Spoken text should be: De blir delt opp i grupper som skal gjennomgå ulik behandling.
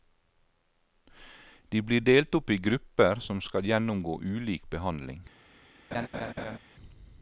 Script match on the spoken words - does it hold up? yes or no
yes